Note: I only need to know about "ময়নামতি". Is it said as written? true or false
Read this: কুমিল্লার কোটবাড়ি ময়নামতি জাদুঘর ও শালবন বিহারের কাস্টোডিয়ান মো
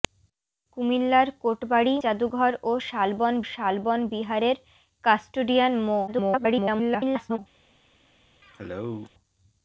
false